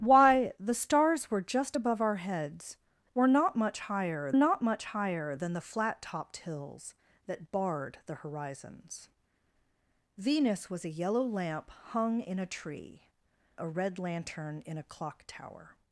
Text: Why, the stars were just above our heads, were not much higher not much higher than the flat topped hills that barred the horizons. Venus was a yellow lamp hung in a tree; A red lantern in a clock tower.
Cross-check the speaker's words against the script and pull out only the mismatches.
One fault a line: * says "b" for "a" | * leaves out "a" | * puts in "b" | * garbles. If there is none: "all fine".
all fine